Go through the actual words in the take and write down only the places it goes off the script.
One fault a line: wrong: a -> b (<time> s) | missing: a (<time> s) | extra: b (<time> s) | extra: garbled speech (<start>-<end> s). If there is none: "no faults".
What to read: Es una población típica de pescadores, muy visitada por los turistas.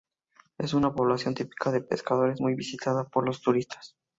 no faults